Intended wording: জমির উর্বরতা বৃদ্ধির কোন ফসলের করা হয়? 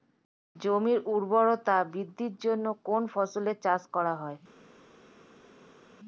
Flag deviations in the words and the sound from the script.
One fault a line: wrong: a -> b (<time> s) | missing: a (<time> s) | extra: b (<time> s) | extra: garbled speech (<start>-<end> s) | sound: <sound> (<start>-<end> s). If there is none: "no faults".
extra: জন্য (2.4 s)
extra: চাষ (3.6 s)